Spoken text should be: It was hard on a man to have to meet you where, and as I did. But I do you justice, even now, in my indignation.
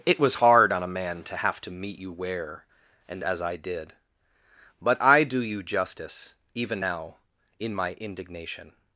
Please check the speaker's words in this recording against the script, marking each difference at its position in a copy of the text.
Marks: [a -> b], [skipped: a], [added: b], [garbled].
It was hard on a man to have to meet you where, and as I did. But I do you justice, even now, in my indignation.